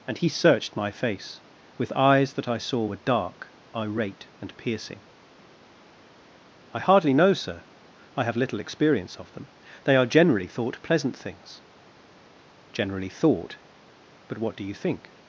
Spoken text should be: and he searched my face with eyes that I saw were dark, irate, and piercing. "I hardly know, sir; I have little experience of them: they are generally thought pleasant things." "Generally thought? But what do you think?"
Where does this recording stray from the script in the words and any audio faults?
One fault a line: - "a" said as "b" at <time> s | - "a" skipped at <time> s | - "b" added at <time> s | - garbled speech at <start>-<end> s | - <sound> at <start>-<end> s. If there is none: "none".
none